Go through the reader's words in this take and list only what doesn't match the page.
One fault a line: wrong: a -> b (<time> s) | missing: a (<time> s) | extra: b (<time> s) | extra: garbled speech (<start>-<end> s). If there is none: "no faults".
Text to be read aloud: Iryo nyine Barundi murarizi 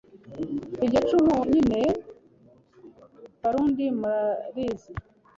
extra: cumu (1.1 s)